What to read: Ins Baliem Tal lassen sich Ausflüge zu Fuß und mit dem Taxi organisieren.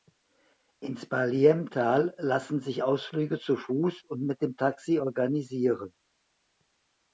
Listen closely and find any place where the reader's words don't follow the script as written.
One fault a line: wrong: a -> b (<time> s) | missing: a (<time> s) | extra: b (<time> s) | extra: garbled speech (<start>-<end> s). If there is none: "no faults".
no faults